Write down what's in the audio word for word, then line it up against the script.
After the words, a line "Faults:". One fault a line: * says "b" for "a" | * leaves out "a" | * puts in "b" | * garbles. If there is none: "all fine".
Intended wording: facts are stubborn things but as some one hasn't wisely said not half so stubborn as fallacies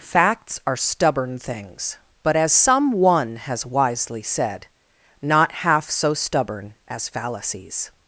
facts are stubborn things but as some one has wisely said not half so stubborn as fallacies
Faults:
* says "has" for "hasn't"